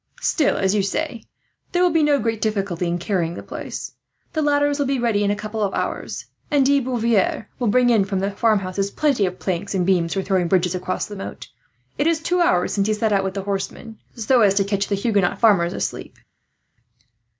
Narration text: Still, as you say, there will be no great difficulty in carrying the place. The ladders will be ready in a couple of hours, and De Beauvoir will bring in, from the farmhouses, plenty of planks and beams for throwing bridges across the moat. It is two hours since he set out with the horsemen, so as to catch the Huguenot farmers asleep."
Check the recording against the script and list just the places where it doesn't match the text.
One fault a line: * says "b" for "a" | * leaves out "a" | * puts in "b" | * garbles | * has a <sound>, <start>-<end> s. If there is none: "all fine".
all fine